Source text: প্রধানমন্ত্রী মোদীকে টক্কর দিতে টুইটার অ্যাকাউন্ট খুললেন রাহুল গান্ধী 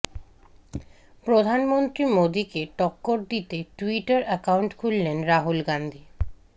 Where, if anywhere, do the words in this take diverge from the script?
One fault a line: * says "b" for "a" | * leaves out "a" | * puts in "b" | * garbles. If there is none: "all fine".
all fine